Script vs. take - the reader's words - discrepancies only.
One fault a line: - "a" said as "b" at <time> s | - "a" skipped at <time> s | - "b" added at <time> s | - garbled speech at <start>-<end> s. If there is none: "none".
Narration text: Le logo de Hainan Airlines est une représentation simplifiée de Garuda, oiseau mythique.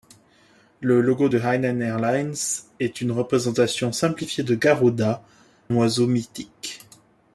none